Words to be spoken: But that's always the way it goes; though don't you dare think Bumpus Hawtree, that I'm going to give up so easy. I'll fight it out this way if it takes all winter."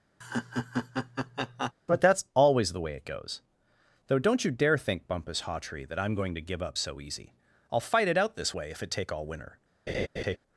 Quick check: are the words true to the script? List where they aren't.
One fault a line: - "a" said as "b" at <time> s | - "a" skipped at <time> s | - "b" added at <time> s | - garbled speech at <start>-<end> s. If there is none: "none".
- "takes" said as "take" at 8.9 s